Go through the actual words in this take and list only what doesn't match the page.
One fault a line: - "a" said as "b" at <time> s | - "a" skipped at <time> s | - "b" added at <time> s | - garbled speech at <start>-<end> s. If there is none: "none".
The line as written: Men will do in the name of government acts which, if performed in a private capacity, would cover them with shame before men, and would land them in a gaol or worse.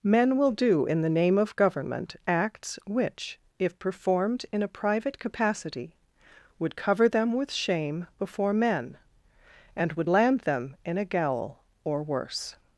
none